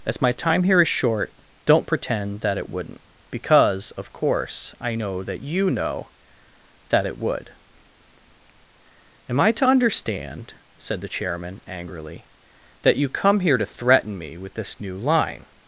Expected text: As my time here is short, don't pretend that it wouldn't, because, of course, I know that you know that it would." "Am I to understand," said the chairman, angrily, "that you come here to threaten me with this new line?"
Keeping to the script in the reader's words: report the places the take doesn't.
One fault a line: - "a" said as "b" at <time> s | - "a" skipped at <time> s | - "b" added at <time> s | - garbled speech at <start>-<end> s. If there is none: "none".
none